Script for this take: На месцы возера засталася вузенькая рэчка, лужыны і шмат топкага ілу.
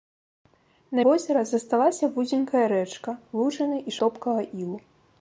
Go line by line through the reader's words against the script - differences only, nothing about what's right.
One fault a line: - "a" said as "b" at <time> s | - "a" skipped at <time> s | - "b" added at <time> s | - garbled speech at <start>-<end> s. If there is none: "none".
- "месцы" skipped at 1.0 s
- "шмат" skipped at 3.9 s